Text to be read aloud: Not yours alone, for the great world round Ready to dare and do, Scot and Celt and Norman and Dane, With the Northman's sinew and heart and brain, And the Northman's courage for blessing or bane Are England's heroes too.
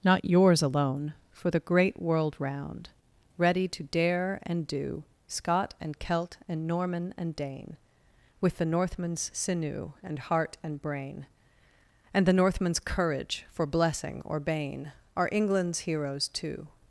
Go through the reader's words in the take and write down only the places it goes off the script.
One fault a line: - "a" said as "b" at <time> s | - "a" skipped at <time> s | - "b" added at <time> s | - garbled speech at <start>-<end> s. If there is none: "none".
none